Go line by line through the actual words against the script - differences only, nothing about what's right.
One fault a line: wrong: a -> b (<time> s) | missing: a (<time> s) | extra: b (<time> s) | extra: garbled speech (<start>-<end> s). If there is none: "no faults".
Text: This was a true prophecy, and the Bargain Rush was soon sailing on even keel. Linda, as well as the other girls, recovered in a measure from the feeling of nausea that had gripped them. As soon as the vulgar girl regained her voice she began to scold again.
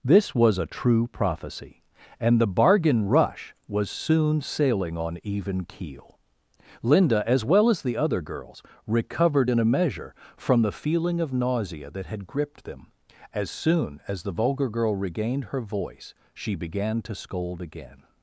no faults